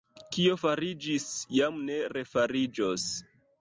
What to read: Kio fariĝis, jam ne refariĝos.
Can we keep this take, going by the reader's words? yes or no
yes